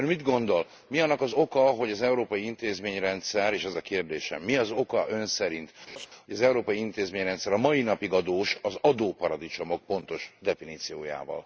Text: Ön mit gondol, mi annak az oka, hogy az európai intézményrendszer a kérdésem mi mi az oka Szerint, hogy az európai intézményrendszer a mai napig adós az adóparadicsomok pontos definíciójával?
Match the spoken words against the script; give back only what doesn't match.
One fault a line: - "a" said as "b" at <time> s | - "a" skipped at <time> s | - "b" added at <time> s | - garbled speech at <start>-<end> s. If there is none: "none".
- "és ez" added at 3.5 s
- "mi" skipped at 4.6 s
- "Ön" added at 5.1 s